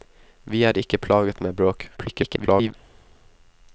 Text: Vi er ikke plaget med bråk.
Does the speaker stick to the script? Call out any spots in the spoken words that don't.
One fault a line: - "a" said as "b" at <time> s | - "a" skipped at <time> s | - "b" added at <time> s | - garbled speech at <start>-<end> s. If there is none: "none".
- garbled speech at 2.0-2.7 s